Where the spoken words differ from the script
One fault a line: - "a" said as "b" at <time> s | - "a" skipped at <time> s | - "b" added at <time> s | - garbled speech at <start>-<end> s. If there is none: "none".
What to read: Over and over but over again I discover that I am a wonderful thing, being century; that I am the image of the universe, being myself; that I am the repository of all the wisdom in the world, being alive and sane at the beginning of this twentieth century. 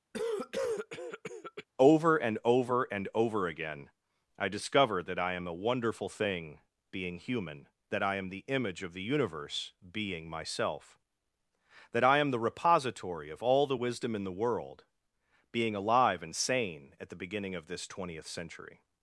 - "but" said as "and" at 2.9 s
- "century" said as "human" at 7.2 s